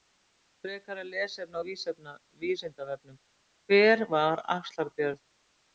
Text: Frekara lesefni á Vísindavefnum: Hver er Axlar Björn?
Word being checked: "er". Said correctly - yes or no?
no